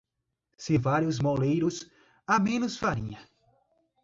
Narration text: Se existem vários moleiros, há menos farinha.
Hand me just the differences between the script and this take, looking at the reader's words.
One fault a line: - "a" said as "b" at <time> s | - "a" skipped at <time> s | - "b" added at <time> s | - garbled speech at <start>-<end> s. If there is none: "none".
- "existem" skipped at 0.8 s